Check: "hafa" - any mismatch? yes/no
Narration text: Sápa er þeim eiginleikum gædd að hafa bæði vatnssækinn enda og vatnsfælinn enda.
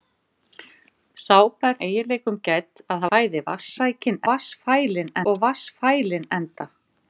yes